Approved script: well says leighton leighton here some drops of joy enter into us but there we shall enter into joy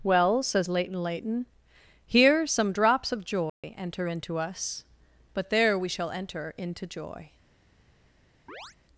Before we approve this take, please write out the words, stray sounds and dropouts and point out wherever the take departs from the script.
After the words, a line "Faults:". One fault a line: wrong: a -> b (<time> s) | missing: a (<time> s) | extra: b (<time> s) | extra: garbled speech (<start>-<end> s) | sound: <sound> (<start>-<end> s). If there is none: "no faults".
well says leighton leighton here some drops of joy enter into us but there we shall enter into joy
Faults:
sound: dropout (3.5-3.6 s)
sound: chirp (8.5-8.8 s)